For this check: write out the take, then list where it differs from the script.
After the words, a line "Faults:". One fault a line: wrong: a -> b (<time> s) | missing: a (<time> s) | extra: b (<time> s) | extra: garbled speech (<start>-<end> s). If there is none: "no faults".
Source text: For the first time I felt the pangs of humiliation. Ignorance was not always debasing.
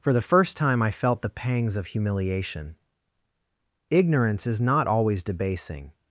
For the first time I felt the pangs of humiliation. Ignorance is not always debasing.
Faults:
wrong: was -> is (4.5 s)